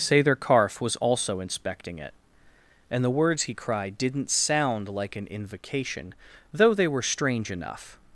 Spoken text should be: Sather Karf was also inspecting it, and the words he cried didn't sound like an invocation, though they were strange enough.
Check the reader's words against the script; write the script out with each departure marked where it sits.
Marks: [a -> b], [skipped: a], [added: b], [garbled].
Sather Karf was also inspecting it, and the words he cried didn't sound like an invocation, though they were strange enough.